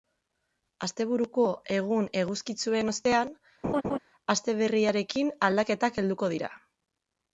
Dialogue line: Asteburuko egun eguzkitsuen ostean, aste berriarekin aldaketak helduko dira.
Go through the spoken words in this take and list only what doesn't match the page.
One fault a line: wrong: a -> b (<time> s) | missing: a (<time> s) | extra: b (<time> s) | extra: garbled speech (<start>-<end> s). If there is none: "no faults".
no faults